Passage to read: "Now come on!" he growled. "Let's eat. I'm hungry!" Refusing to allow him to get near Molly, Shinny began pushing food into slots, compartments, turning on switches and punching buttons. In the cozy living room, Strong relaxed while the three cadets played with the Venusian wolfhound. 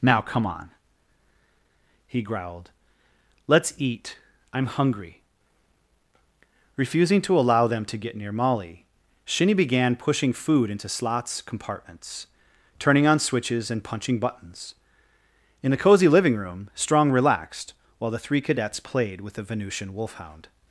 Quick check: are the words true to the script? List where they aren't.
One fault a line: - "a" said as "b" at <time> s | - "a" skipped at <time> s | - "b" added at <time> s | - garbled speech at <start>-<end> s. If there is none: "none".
- "him" said as "them" at 7.7 s